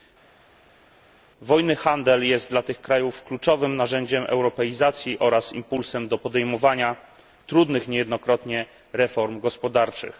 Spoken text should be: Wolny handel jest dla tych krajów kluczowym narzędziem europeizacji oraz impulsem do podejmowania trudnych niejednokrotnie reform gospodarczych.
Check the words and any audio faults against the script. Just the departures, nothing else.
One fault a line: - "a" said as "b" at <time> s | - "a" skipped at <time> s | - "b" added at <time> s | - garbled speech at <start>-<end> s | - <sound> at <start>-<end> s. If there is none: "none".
none